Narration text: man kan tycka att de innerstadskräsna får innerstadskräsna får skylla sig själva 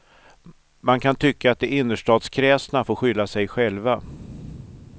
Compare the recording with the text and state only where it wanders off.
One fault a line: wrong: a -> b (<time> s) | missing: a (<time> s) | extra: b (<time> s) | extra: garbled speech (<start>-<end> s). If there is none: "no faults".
missing: innerstadskräsna får (3.0 s)